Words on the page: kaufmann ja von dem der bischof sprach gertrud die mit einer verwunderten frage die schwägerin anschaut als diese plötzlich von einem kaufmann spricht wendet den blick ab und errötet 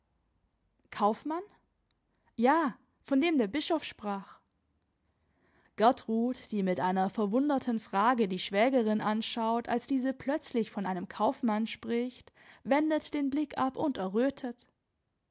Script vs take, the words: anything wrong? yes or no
no